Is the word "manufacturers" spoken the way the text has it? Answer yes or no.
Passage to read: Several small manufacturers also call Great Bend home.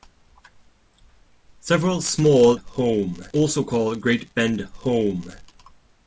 no